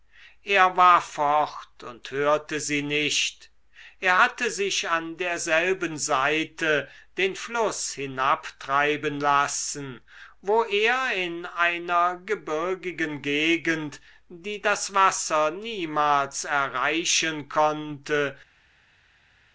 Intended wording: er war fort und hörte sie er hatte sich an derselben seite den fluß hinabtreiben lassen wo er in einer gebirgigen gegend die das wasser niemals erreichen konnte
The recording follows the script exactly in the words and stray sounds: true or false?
false